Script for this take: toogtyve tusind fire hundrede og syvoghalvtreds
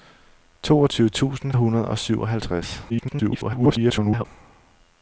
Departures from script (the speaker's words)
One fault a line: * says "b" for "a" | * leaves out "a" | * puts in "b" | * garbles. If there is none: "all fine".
* leaves out "fire"
* garbles